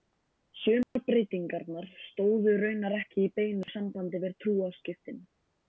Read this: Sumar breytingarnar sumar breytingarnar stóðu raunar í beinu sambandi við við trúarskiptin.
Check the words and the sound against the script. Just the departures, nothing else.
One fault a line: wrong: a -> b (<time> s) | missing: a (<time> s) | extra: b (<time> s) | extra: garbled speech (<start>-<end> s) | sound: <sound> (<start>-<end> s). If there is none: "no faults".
sound: dropout (0.8-1.0 s)
missing: sumar breytingarnar (1.9 s)
extra: ekki (3.0 s)
sound: dropout (3.6-3.7 s)
missing: við (4.4 s)